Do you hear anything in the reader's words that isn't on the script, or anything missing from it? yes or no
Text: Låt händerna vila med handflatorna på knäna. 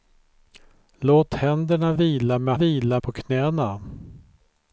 yes